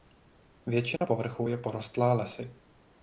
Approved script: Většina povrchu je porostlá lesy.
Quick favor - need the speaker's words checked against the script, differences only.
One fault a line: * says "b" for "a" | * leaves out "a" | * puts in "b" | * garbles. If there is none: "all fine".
all fine